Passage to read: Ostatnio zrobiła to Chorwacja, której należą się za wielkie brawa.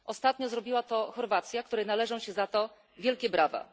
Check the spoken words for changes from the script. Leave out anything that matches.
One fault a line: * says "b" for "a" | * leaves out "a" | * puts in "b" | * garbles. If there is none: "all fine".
* puts in "to"